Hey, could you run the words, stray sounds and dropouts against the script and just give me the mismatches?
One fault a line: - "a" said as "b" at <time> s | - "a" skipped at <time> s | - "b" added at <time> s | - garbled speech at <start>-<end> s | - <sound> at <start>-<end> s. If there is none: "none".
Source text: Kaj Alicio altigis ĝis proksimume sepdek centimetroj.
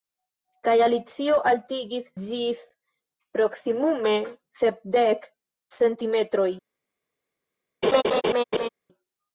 - laugh at 7.8-8.7 s